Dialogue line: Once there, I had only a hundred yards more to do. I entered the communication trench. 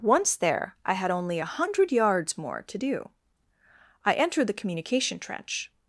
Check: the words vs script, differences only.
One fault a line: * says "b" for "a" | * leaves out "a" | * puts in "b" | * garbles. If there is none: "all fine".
all fine